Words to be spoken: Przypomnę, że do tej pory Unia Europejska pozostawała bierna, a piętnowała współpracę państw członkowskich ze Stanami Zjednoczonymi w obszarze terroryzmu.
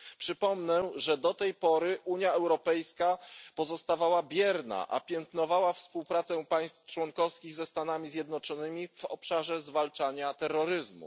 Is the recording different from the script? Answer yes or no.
yes